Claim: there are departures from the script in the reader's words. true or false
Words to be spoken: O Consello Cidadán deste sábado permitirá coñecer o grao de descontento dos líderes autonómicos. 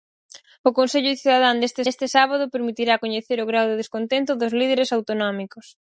true